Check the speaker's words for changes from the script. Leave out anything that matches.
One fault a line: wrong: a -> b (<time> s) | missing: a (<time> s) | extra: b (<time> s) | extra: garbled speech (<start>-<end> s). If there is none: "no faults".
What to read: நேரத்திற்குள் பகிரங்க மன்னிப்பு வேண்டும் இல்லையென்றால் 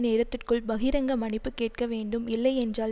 extra: கேட்க (1.5 s)